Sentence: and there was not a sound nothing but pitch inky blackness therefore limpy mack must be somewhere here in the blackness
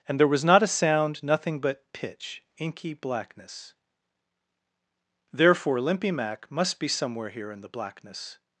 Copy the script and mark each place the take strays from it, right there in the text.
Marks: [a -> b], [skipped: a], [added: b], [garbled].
and there was not a sound nothing but pitch inky blackness therefore limpy mack must be somewhere here in the blackness